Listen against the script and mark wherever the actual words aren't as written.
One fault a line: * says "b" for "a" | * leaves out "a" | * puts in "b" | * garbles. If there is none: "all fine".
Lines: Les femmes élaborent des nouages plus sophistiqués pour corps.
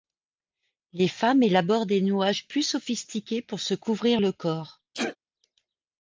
* puts in "se couvrir le"